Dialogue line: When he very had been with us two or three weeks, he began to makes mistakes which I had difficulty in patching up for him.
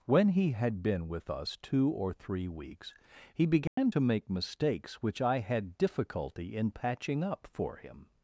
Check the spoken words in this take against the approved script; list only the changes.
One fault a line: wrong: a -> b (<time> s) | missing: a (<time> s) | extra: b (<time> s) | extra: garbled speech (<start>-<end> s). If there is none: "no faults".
missing: very (0.5 s)
wrong: makes -> make (4.0 s)